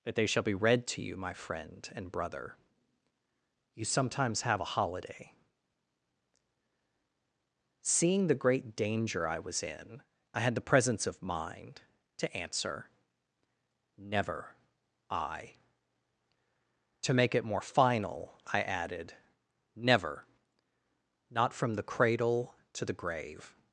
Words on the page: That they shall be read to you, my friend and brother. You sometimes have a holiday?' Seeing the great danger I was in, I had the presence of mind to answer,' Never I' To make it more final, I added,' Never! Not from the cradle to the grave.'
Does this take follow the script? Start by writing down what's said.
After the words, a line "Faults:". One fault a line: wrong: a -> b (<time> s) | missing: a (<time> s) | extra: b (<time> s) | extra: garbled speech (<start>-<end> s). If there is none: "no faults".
That they shall be read to you, my friend and brother. You sometimes have a holiday?' Seeing the great danger I was in, I had the presence of mind to answer,' Never I' To make it more final, I added,' Never! Not from the cradle to the grave.'
Faults:
no faults